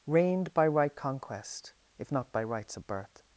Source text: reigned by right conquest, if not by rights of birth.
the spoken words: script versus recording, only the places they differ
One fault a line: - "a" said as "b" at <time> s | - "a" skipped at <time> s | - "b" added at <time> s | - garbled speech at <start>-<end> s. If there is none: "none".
none